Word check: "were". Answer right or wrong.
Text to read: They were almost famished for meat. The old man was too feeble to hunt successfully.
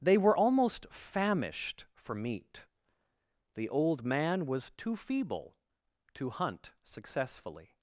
right